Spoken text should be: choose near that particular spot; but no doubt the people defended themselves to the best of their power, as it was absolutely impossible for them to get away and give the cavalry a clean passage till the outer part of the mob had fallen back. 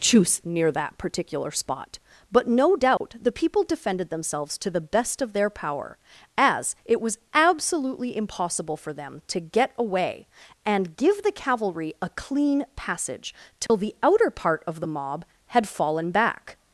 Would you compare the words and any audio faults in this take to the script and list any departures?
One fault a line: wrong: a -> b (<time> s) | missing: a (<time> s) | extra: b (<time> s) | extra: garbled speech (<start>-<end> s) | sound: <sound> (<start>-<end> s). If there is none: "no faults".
sound: dropout (3.0-3.0 s)
sound: dropout (13.7-13.7 s)